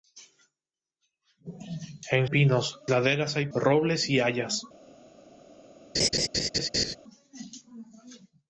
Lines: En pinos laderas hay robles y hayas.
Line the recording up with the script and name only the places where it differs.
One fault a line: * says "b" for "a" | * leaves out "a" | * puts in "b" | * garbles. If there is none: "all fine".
all fine